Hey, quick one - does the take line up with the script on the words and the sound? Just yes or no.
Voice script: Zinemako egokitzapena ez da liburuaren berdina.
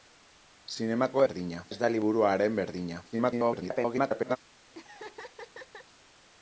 no